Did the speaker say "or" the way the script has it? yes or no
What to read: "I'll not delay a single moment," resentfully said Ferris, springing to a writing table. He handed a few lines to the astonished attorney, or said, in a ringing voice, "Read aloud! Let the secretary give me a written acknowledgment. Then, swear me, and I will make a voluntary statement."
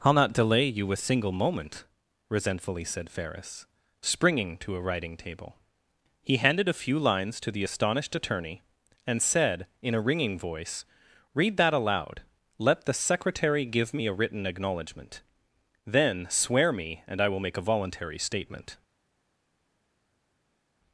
no